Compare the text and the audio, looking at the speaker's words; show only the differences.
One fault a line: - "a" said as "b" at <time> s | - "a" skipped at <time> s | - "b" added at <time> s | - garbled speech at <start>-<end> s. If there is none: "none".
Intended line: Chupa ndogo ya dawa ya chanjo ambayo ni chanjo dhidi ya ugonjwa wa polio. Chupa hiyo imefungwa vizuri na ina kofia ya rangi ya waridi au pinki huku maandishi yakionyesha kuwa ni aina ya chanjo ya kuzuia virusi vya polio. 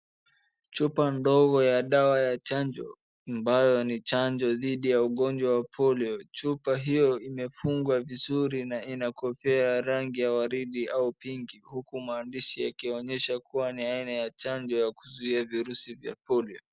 none